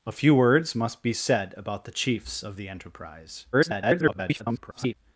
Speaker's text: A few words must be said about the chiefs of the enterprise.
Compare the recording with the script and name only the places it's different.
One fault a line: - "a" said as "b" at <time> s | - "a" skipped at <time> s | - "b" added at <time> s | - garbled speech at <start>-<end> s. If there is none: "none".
- garbled speech at 3.5-4.9 s